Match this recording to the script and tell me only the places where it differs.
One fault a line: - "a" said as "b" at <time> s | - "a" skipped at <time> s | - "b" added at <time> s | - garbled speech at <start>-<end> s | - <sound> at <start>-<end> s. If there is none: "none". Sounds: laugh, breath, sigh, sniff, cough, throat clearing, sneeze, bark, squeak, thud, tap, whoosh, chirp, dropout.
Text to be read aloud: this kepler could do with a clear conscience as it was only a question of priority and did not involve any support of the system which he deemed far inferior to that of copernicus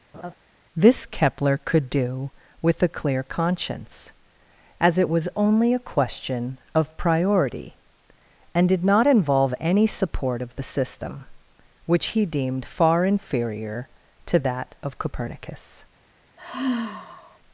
- laugh at 0.1-0.3 s
- sigh at 16.4-17.4 s